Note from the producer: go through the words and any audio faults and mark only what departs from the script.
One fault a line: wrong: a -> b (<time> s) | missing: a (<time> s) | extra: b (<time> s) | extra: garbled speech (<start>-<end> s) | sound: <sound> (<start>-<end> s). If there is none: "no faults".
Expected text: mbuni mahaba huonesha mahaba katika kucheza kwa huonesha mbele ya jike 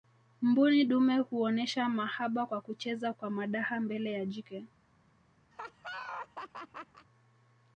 wrong: mahaba -> dume (0.8 s)
wrong: katika -> kwa (2.4 s)
wrong: huonesha -> madaha (3.3 s)
sound: laugh (5.5-7.1 s)